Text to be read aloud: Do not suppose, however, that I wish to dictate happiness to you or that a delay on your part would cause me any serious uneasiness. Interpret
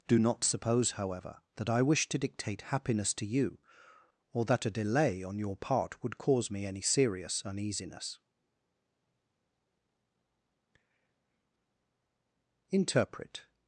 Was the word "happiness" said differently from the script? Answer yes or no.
no